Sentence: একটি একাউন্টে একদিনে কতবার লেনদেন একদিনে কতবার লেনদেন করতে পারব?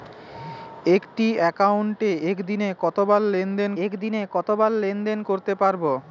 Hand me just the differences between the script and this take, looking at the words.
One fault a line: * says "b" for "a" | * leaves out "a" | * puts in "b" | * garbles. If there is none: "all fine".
all fine